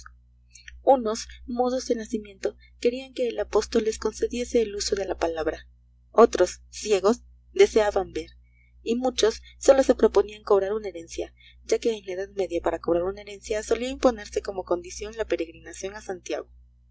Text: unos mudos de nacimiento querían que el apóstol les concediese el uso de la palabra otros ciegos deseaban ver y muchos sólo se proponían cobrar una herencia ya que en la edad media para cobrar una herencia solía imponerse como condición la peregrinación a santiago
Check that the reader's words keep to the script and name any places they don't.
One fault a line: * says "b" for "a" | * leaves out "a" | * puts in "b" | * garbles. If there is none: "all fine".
all fine